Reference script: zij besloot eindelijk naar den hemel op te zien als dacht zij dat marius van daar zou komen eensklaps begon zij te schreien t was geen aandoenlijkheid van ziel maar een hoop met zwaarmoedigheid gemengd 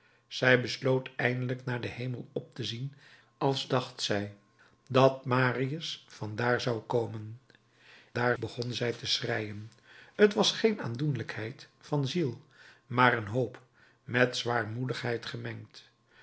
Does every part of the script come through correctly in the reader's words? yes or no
no